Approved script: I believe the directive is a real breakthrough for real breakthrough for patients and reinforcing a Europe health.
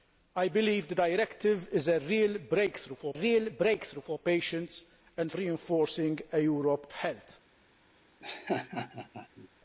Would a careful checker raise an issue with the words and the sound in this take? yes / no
yes